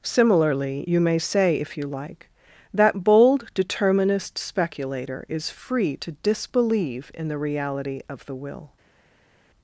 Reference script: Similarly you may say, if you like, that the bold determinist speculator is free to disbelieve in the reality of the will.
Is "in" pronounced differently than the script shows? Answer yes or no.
no